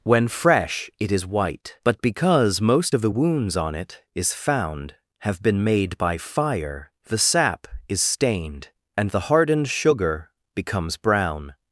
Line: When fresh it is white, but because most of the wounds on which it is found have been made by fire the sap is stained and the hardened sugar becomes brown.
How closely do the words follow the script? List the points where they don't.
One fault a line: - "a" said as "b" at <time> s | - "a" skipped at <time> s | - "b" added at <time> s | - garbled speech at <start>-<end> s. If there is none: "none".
- "which" skipped at 3.7 s